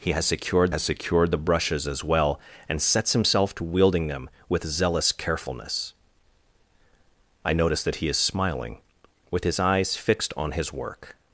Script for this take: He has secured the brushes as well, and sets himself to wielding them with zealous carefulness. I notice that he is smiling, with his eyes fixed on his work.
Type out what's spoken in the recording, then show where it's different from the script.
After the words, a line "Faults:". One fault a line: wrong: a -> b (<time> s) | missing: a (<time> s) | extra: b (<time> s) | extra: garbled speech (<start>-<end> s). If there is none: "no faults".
He has secured has secured the brushes as well, and sets himself to wielding them with zealous carefulness. I notice that he is smiling, with his eyes fixed on his work.
Faults:
extra: has secured (0.7 s)